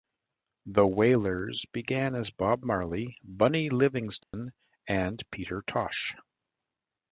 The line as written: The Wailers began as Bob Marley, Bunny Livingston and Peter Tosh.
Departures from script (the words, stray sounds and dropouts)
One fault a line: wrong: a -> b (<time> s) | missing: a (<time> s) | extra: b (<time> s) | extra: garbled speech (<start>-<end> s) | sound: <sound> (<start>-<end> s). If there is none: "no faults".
sound: dropout (4.2-4.3 s)